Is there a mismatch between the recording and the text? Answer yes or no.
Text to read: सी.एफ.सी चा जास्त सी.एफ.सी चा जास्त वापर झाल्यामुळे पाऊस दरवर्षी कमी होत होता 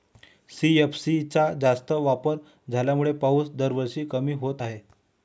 yes